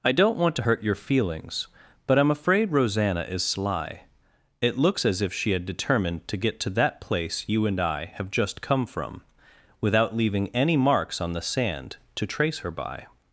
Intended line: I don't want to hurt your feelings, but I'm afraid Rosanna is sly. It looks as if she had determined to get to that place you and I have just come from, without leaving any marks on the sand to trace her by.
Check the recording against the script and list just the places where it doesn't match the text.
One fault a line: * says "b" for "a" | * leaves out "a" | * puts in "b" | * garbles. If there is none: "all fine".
all fine